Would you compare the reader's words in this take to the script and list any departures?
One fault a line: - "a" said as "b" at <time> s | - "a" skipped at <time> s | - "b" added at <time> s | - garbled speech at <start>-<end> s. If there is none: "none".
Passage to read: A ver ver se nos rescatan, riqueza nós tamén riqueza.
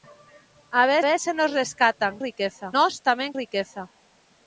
none